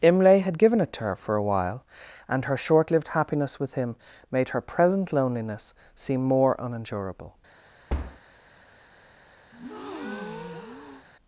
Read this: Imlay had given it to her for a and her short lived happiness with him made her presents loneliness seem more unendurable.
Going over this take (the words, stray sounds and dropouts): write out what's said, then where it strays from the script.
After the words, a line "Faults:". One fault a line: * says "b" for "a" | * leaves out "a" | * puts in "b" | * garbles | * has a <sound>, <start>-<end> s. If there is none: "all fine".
Imlay had given it to her for a while, and her short lived happiness with him made her present loneliness seem more unendurable.
Faults:
* puts in "while"
* says "present" for "presents"
* has a thud, 7.9-8.2 s
* has a breath, 9.5-11.1 s